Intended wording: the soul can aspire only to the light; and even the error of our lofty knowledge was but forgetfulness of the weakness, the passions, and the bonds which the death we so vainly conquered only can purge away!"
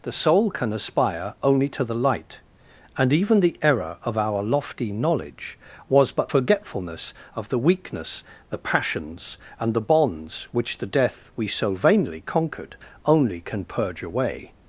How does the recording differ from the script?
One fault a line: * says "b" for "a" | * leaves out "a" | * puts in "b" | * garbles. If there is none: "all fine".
all fine